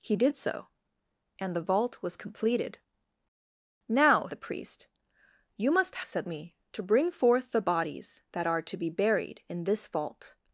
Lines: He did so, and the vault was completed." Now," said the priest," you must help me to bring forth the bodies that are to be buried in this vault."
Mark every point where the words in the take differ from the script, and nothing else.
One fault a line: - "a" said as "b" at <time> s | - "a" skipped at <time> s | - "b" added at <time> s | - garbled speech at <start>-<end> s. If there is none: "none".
- "said" skipped at 4.3 s
- "help" said as "said" at 6.0 s